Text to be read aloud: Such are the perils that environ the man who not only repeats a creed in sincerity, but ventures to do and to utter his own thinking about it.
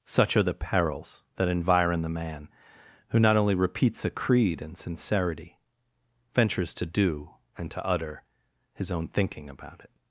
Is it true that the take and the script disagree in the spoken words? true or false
true